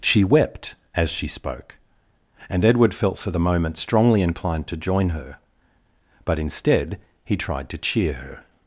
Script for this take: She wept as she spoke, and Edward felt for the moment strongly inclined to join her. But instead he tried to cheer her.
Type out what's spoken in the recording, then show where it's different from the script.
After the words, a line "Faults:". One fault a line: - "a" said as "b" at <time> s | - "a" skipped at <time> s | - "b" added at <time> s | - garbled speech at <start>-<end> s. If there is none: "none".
She wept as she spoke, and Edward felt for the moment strongly inclined to join her. But instead he tried to cheer her.
Faults:
none